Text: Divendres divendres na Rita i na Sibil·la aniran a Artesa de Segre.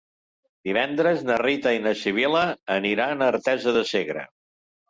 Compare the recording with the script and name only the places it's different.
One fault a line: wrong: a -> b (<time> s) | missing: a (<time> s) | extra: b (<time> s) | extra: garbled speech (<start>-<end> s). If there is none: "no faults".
missing: divendres (1.2 s)